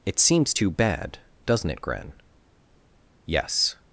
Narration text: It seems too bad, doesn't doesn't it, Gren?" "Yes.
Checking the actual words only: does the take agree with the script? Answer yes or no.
no